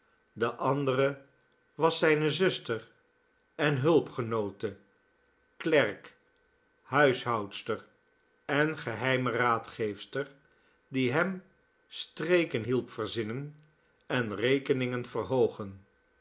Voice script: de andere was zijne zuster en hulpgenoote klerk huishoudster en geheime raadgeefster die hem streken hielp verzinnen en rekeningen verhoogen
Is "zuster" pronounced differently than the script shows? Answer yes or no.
no